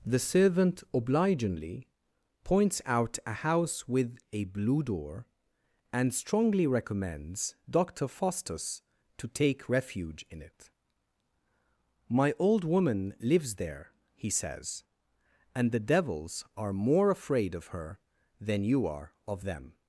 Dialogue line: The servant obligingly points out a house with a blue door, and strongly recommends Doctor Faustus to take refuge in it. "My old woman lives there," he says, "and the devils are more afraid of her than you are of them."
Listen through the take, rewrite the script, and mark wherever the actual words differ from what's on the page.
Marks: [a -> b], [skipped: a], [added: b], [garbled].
The servant obligingly points out a house with a blue door, and strongly recommends Doctor Faustus to take refuge in it. "My old woman lives there," he says, "and the devils are more afraid of her than you are of them."